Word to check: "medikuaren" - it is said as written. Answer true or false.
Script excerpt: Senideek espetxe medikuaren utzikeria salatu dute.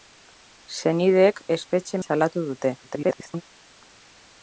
false